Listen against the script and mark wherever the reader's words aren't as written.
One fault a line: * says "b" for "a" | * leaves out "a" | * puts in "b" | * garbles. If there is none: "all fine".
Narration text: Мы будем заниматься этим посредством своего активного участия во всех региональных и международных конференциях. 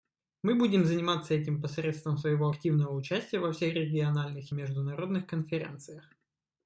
all fine